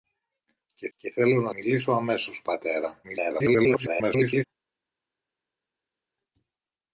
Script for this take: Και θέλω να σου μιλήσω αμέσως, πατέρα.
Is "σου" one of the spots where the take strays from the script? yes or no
yes